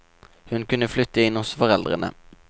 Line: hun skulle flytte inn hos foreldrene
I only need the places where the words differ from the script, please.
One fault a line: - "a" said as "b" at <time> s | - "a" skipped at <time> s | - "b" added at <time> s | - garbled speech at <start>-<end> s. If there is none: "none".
- "skulle" said as "kunne" at 0.7 s